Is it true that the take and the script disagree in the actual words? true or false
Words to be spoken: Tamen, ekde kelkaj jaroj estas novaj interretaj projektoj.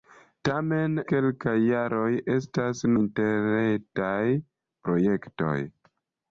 true